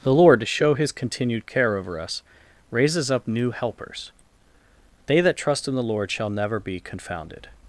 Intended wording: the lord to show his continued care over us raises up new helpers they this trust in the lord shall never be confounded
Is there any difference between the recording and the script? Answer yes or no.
yes